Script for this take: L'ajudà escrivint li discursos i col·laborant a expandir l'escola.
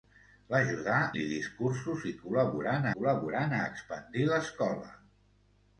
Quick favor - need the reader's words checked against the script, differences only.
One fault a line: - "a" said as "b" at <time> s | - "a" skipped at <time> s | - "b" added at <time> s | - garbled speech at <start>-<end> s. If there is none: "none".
- "escrivint" skipped at 0.9 s
- "col·laborant" added at 2.9 s